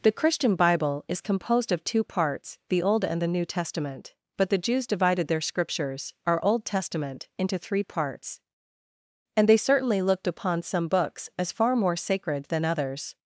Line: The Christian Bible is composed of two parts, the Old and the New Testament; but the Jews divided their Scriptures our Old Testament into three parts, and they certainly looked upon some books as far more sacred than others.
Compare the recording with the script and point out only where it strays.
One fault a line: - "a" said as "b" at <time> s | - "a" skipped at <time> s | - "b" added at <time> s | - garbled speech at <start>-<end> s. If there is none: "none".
none